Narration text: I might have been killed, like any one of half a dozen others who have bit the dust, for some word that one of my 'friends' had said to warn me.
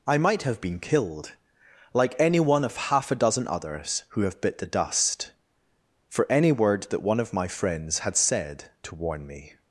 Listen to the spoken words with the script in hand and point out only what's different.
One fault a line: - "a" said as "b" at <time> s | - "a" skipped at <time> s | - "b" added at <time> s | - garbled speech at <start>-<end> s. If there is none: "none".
- "some" said as "any" at 6.3 s